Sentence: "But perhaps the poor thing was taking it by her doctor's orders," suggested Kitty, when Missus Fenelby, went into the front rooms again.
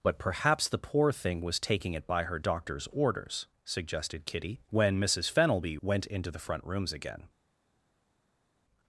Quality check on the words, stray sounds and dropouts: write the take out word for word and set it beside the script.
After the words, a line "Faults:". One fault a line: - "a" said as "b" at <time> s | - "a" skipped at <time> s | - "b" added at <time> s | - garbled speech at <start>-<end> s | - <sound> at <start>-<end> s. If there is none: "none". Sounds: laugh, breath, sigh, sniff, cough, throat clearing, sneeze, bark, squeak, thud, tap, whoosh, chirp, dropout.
"But perhaps the poor thing was taking it by her doctor's orders," suggested Kitty, when Missus Fenelby, went into the front rooms again.
Faults:
none